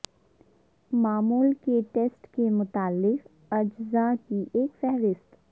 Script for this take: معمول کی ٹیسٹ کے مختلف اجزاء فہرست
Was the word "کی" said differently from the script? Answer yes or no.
yes